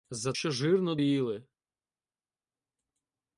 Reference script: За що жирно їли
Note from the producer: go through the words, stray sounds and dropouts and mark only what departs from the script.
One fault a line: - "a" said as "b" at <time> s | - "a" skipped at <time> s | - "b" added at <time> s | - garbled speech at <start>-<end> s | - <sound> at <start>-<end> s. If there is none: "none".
none